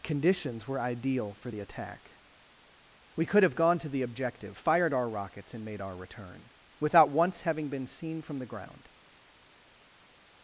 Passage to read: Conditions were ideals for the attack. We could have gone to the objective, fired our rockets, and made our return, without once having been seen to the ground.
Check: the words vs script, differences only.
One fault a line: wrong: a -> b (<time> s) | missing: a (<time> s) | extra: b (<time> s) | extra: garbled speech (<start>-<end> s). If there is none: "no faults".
wrong: ideals -> ideal (0.8 s)
wrong: to -> from (8.2 s)